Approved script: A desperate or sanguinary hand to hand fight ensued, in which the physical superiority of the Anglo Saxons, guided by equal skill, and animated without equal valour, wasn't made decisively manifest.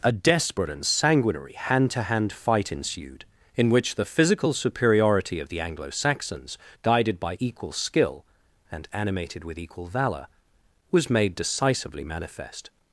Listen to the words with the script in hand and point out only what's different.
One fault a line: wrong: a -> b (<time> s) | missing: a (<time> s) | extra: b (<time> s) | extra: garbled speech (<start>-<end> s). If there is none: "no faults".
wrong: or -> and (0.7 s)
wrong: without -> with (9.4 s)
wrong: wasn't -> was (10.9 s)